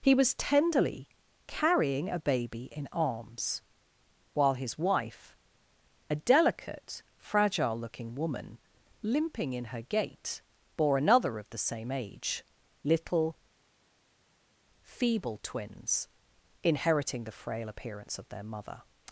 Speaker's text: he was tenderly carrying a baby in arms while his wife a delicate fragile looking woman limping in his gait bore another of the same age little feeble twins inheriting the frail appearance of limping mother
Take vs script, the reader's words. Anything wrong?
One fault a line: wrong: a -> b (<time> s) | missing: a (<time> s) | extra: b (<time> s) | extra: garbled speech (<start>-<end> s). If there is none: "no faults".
wrong: his -> her (9.7 s)
wrong: limping -> their (18.3 s)